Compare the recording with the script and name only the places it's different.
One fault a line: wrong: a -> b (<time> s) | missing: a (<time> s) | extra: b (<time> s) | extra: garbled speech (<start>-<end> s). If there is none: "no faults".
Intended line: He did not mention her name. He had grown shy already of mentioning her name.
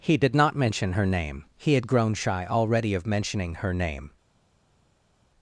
no faults